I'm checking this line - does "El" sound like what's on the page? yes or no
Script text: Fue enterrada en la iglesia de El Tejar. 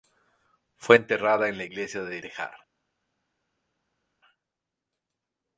no